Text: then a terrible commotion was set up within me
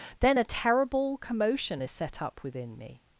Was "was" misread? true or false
true